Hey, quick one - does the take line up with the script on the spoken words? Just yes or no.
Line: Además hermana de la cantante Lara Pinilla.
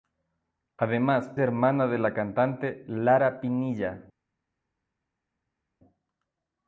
yes